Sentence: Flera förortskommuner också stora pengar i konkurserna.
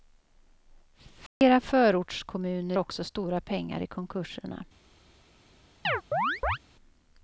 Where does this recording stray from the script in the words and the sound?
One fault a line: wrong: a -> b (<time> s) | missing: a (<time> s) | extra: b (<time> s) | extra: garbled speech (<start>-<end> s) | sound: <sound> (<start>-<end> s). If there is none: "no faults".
sound: dropout (1.3-1.4 s)
sound: chirp (5.8-6.6 s)